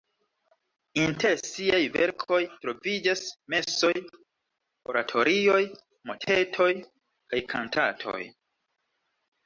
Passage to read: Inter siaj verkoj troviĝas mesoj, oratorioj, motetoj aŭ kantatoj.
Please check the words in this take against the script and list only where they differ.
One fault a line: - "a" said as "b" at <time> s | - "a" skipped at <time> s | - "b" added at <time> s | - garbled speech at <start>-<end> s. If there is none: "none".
- "aŭ" said as "kaj" at 6.8 s